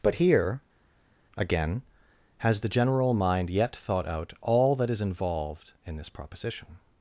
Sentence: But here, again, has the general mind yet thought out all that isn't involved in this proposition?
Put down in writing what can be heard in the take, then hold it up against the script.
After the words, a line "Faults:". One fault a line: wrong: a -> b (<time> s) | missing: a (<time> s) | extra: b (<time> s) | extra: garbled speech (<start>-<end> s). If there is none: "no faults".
But here, again, has the general mind yet thought out all that is involved in this proposition?
Faults:
wrong: isn't -> is (4.9 s)